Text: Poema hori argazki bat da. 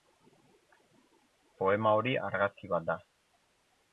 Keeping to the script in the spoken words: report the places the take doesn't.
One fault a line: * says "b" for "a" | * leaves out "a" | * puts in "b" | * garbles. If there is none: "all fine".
all fine